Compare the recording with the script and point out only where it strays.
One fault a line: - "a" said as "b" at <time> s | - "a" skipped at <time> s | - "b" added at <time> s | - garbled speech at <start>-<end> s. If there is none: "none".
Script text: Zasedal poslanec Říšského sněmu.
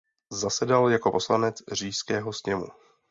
- "jako" added at 0.9 s